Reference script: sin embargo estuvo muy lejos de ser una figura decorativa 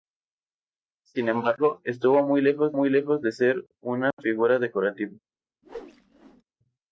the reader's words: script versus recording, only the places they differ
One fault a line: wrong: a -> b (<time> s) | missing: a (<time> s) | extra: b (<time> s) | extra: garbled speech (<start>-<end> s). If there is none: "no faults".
extra: muy lejos (2.7 s)